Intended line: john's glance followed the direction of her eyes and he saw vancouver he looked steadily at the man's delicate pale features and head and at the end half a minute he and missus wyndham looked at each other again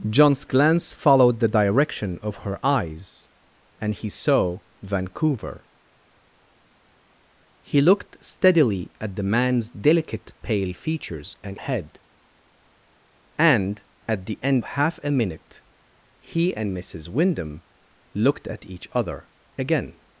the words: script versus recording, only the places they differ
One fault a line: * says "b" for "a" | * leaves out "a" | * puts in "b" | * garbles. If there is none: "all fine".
all fine